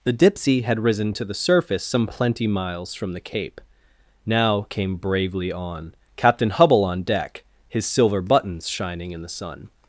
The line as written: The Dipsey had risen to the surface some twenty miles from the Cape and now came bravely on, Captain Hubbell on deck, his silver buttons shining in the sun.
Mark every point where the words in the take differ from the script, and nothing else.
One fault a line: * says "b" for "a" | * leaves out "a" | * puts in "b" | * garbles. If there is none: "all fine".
* says "plenty" for "twenty"
* leaves out "and"